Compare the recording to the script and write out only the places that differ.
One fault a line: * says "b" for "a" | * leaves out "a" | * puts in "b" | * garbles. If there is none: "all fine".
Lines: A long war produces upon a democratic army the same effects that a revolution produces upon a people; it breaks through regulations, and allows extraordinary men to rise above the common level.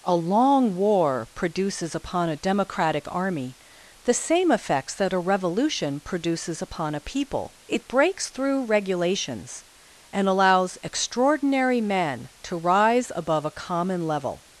* says "a" for "the"